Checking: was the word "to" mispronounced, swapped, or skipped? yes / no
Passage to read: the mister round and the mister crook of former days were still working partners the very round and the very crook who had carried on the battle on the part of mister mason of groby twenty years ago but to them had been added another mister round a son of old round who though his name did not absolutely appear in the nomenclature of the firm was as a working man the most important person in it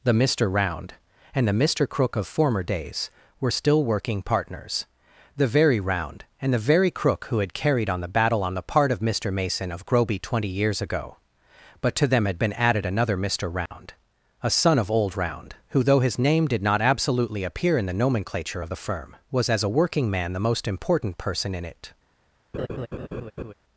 no